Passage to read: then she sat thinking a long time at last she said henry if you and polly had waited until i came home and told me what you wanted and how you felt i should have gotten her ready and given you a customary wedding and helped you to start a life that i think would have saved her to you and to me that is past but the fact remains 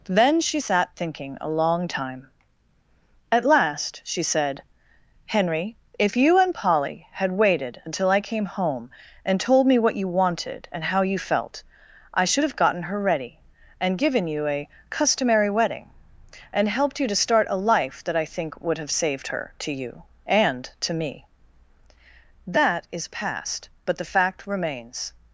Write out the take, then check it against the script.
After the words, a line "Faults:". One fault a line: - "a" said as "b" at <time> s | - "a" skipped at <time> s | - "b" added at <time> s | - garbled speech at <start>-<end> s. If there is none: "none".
then she sat thinking a long time at last she said henry if you and polly had waited until i came home and told me what you wanted and how you felt i should have gotten her ready and given you a customary wedding and helped you to start a life that i think would have saved her to you and to me that is past but the fact remains
Faults:
none